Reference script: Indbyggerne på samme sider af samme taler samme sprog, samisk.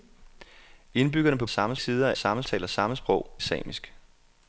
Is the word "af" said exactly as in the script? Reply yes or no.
yes